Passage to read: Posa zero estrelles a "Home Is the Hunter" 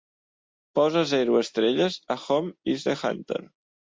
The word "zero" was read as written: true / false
true